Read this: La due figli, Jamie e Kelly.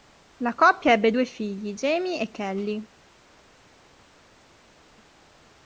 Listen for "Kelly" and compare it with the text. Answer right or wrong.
right